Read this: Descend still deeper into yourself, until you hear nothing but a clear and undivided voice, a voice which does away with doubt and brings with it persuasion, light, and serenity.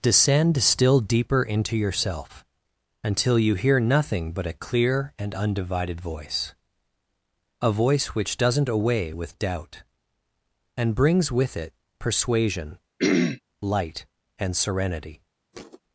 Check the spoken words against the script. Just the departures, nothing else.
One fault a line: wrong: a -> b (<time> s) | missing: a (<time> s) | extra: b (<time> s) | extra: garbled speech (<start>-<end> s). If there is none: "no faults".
wrong: does -> doesn't (8.3 s)